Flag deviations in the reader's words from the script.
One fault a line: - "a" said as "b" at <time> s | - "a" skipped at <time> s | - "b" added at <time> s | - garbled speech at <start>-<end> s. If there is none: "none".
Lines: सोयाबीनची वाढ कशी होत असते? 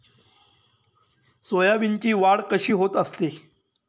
none